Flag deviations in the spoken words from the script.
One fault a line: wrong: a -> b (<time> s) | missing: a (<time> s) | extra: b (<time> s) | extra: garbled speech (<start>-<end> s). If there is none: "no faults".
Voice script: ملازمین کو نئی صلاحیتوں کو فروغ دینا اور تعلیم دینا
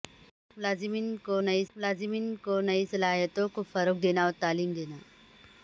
extra: ملازمین کو نئی (1.8 s)